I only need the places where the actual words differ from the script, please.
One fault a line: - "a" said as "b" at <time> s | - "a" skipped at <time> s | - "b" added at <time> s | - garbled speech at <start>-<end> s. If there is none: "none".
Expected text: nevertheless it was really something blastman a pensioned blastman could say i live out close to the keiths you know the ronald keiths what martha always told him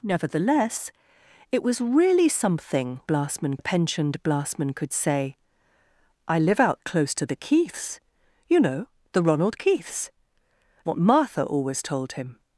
none